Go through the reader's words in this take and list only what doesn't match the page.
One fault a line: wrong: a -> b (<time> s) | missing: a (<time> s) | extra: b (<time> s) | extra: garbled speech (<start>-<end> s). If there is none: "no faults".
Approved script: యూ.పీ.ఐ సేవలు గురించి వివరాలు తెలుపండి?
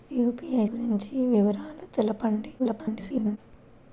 missing: సేవలు (0.7 s)
extra: garbled speech (2.6-3.4 s)